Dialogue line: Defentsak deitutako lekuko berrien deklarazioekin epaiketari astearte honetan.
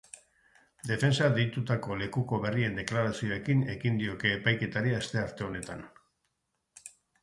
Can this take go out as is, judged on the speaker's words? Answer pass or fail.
fail